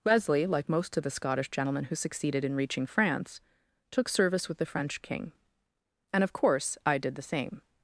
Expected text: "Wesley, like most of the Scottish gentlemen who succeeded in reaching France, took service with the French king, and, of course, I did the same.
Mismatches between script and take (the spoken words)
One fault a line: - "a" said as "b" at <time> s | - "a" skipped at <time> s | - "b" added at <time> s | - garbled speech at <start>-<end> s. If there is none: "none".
none